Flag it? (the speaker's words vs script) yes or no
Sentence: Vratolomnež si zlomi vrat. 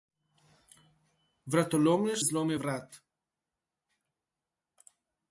yes